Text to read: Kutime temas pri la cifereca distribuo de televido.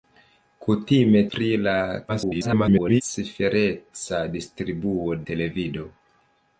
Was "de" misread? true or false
true